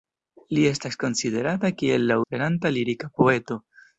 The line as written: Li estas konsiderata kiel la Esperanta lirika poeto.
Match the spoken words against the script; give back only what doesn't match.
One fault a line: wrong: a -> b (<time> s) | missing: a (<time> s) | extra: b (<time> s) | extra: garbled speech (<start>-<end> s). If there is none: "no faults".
no faults